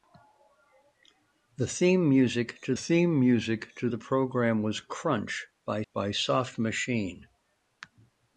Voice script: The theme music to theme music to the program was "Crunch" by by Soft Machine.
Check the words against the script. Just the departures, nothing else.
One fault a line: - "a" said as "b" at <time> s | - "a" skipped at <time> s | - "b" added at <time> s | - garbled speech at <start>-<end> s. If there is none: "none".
none